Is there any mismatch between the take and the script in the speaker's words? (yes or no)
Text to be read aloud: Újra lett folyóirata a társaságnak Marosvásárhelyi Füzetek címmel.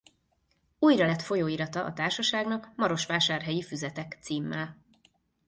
no